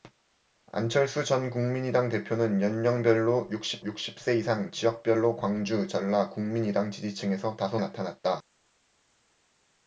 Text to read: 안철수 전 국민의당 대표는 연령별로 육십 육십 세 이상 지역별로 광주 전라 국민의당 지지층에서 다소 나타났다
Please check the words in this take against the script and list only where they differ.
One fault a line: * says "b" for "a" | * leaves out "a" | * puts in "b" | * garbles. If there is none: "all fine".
all fine